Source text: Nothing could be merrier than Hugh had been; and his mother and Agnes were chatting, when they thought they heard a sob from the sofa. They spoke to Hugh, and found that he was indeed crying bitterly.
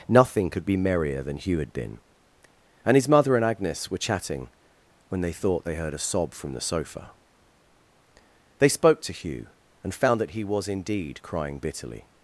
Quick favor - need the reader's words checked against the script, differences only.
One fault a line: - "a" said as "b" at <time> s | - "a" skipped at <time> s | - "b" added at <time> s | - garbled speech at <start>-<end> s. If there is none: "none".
none